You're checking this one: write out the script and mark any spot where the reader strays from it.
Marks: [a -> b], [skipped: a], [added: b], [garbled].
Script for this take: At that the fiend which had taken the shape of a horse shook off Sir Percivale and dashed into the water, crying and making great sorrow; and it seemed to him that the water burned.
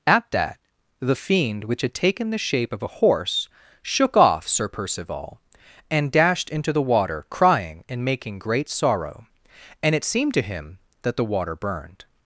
At that the fiend which had taken the shape of a horse shook off Sir Percivale and dashed into the water, crying and making great sorrow; and it seemed to him that the water burned.